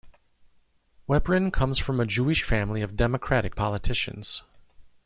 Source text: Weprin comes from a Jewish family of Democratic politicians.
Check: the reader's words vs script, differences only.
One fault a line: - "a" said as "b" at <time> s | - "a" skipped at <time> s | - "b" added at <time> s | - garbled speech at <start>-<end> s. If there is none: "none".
none